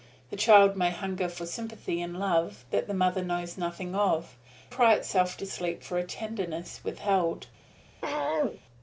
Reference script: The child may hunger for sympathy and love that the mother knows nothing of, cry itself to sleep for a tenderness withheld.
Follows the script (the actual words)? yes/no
yes